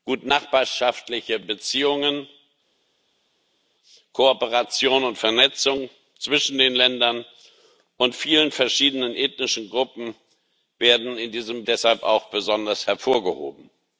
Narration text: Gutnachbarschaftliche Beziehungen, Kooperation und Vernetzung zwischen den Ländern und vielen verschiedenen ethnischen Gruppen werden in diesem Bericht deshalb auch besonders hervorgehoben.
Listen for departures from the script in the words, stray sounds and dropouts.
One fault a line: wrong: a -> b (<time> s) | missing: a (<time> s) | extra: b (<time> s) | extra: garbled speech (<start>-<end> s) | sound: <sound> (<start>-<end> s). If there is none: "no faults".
missing: Bericht (11.6 s)